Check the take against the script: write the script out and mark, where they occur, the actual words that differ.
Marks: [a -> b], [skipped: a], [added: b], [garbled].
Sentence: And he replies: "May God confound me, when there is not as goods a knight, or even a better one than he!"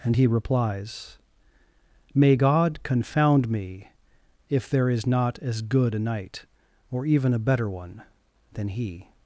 And he replies: "May God confound me, [when -> if] there is not as [goods -> good] a knight, or even a better one than he!"